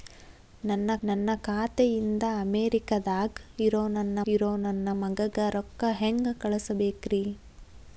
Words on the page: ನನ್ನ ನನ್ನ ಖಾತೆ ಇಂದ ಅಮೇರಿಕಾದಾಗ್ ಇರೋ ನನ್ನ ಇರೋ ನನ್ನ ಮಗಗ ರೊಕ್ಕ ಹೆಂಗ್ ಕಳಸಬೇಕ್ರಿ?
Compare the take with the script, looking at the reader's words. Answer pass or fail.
pass